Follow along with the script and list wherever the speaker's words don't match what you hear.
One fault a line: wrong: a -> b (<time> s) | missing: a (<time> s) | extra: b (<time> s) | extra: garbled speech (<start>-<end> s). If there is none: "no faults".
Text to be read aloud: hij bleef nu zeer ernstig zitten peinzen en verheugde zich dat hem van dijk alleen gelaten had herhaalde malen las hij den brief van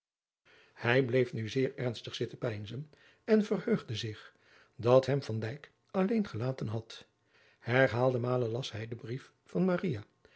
no faults